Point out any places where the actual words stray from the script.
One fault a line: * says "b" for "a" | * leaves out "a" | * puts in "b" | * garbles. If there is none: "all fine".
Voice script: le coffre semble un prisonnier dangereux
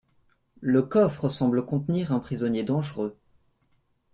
* puts in "contenir"